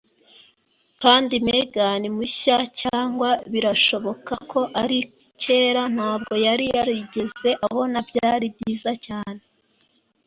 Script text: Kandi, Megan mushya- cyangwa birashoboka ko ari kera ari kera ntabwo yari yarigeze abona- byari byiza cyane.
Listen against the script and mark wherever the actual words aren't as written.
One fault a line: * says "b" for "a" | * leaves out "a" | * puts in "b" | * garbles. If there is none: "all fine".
* leaves out "ari kera"